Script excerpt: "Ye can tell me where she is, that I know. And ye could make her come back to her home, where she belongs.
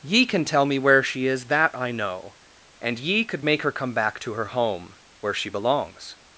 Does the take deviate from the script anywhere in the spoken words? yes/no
no